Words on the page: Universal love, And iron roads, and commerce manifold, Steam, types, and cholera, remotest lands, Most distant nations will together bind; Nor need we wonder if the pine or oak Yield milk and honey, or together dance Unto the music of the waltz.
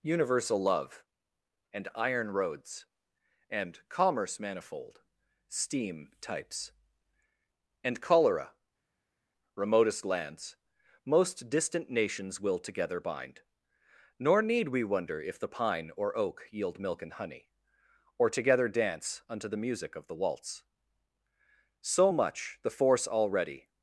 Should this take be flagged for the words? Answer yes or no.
yes